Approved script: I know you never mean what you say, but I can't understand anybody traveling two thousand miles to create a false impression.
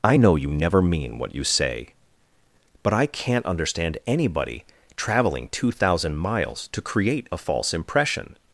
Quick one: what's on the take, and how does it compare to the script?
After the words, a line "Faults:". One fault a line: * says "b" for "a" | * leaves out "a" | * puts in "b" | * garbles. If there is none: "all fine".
I know you never mean what you say, but I can't understand anybody traveling two thousand miles to create a false impression.
Faults:
all fine